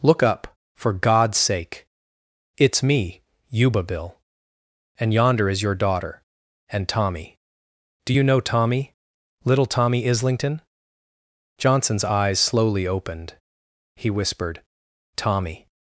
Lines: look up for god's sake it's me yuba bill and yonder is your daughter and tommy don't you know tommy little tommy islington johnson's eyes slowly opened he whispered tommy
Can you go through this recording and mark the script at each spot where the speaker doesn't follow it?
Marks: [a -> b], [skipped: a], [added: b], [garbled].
look up for god's sake it's me yuba bill and yonder is your daughter and tommy [don't -> do] you know tommy little tommy islington johnson's eyes slowly opened he whispered tommy